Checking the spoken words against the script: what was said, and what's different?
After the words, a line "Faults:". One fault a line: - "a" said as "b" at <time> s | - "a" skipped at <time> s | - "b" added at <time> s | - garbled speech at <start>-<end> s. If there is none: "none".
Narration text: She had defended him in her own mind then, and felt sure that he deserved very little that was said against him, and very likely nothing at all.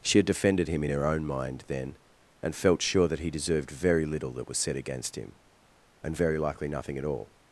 She had defended him in her own mind then, and felt sure that he deserved very little that was said against him, and very likely nothing at all.
Faults:
none